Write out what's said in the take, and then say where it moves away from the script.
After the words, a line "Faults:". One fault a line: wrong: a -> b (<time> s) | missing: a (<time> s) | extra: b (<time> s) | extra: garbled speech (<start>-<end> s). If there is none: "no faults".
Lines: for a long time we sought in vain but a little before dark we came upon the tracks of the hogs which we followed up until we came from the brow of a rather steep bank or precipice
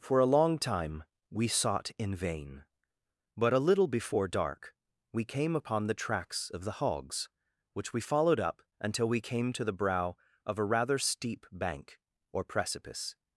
for a long time we sought in vain but a little before dark we came upon the tracks of the hogs which we followed up until we came to the brow of a rather steep bank or precipice
Faults:
wrong: from -> to (9.5 s)